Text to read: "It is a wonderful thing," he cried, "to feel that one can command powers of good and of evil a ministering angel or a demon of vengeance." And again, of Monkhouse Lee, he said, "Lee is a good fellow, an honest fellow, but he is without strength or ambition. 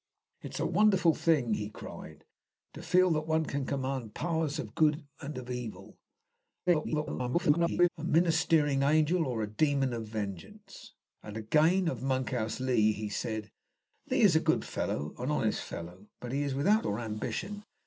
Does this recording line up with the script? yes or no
no